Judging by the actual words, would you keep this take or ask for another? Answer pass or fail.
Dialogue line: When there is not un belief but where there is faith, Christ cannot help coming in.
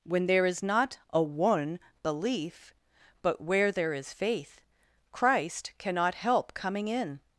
fail